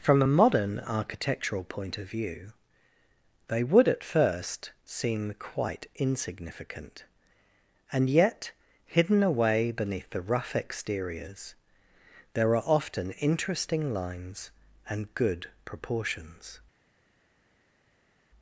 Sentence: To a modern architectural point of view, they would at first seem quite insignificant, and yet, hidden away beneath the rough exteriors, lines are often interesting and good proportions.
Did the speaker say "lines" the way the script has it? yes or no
no